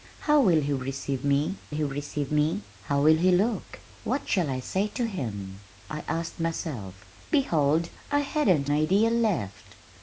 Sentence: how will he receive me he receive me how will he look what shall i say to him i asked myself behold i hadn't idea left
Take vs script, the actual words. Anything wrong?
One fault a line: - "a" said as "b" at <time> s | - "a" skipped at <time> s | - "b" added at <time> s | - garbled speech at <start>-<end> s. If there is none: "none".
none